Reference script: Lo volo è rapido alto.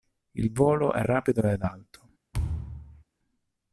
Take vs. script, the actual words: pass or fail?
fail